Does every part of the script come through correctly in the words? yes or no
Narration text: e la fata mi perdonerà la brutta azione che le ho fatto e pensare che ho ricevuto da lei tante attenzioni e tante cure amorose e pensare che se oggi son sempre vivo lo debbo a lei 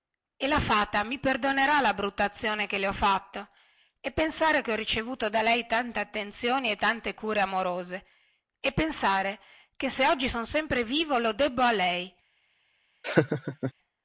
yes